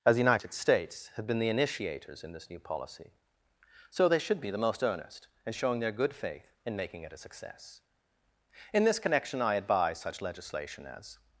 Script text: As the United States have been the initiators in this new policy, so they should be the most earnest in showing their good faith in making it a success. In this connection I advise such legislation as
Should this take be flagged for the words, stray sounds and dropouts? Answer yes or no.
no